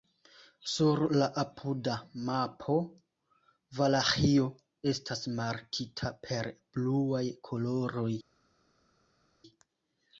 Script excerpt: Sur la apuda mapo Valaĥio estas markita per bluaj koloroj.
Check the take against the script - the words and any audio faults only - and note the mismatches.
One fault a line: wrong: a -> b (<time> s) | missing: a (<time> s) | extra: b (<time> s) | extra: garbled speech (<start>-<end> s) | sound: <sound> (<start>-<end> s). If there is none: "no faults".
no faults